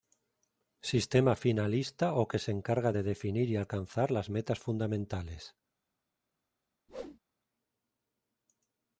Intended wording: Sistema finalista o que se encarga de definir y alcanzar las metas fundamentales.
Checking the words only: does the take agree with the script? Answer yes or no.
yes